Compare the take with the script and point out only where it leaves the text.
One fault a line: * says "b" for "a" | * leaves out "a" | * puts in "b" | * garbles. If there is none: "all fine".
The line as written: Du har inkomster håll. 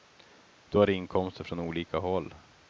* puts in "från olika"